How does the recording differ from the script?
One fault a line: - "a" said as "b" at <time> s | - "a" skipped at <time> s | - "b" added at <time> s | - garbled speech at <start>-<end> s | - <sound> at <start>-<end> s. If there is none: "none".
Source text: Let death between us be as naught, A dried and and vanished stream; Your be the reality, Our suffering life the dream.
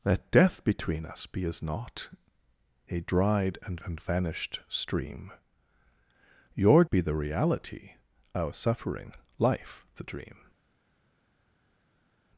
none